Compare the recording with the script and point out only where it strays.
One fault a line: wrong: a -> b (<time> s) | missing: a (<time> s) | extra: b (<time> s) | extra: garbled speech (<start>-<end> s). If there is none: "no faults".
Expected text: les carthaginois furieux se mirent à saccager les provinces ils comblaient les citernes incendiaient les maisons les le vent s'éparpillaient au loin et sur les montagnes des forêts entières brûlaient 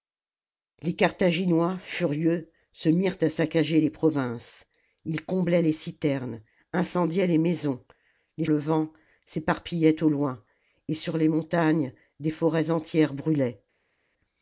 no faults